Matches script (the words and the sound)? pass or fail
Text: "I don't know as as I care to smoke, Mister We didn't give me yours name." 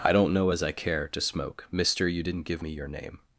fail